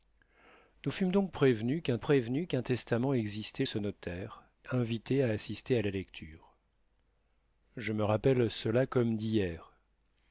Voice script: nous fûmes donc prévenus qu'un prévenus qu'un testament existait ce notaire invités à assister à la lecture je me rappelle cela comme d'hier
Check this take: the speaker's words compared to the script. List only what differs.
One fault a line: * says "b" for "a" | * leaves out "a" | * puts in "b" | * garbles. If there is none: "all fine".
all fine